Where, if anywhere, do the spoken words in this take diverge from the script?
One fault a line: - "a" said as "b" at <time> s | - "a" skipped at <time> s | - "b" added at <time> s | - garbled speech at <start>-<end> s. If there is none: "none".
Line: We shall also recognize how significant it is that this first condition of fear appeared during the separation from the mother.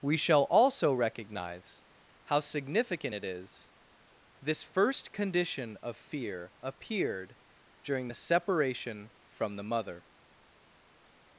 - "that" skipped at 3.7 s